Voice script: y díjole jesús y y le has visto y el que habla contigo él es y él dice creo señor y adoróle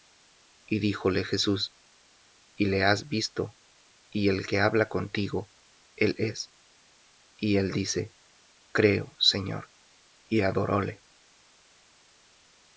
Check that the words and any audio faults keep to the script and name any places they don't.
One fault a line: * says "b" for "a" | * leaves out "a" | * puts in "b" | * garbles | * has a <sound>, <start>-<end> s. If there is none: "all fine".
* leaves out "y"